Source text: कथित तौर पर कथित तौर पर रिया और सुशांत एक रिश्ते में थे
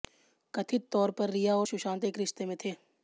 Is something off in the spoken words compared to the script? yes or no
yes